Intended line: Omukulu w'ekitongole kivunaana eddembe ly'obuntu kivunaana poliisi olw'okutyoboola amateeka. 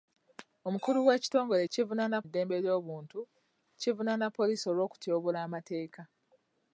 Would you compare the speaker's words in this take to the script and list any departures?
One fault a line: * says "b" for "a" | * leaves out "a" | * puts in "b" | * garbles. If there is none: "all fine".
all fine